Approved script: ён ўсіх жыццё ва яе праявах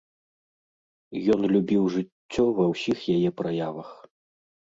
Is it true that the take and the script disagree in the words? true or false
true